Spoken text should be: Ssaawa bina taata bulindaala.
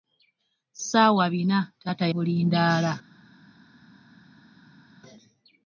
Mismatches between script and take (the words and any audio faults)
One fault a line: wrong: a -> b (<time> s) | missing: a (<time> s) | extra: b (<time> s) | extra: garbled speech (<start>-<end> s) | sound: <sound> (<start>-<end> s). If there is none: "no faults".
no faults